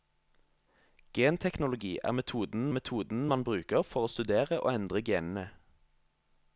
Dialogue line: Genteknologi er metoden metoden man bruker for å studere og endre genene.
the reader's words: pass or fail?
pass